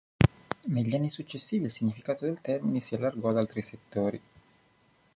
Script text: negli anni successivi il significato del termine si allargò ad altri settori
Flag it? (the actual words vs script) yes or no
no